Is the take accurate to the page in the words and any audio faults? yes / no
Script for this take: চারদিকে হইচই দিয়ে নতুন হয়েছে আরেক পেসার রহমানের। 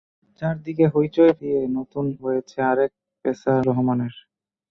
yes